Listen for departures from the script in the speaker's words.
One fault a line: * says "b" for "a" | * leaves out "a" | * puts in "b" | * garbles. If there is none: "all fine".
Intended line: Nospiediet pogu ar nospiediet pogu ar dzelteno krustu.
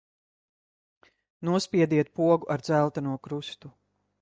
* leaves out "nospiediet pogu ar"